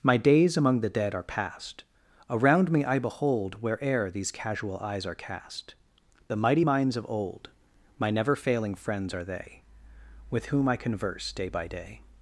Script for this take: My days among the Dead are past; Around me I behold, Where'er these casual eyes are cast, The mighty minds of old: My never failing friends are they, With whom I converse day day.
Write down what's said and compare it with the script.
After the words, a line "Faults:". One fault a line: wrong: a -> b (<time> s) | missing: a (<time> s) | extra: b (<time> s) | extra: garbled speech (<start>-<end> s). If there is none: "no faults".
My days among the Dead are past; Around me I behold, Where'er these casual eyes are cast, The mighty minds of old: My never failing friends are they, With whom I converse day by day.
Faults:
extra: by (11.5 s)